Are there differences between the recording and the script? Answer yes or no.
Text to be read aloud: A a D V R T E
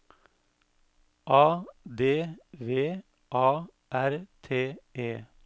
yes